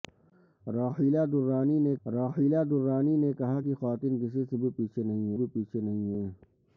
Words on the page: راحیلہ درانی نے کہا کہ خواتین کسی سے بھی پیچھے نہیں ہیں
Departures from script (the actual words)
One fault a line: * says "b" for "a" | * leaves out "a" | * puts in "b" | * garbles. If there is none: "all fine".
* puts in "راحیلہ درانی نے"
* puts in "بھی پیچھے نہیں"